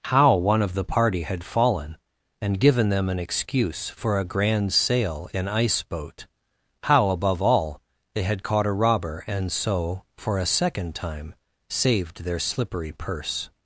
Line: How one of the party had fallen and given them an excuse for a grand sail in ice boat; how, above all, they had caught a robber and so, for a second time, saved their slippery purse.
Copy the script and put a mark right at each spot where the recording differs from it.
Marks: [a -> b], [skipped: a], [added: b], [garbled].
How one of the party had fallen and given them an excuse for a grand sail in ice boat; how, above all, they had caught a robber and so, for a second time, saved their slippery purse.